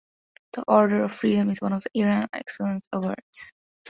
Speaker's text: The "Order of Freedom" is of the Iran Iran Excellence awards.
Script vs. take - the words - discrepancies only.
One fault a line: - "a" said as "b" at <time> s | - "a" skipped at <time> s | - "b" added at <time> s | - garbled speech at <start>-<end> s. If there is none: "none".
- "one" added at 1.6 s
- "Iran" skipped at 2.3 s